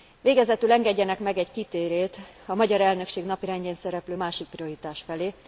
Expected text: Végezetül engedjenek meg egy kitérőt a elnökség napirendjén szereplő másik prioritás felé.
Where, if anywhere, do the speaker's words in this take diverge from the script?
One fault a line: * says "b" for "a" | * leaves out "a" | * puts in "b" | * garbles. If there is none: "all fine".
* puts in "magyar"